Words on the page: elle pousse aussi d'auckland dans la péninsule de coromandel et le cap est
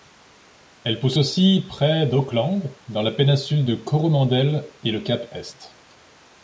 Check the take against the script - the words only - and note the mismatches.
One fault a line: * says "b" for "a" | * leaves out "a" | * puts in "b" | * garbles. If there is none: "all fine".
* puts in "près"